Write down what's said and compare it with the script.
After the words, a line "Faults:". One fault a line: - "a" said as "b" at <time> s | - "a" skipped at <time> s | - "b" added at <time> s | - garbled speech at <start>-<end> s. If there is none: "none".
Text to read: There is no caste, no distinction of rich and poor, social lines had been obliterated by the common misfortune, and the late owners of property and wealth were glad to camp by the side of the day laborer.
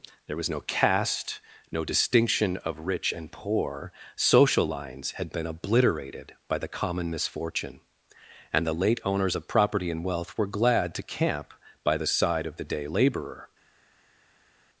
There was no caste, no distinction of rich and poor, social lines had been obliterated by the common misfortune, and the late owners of property and wealth were glad to camp by the side of the day laborer.
Faults:
- "is" said as "was" at 0.4 s